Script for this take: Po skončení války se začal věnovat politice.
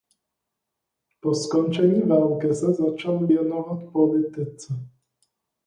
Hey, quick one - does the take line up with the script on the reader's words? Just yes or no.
yes